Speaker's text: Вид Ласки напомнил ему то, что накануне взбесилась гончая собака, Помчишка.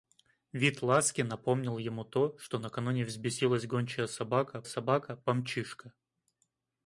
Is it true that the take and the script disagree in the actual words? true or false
true